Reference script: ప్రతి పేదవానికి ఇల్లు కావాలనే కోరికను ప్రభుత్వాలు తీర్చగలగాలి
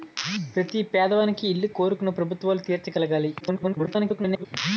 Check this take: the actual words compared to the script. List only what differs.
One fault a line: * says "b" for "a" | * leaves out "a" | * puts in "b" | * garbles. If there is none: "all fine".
* leaves out "కావాలనే"
* garbles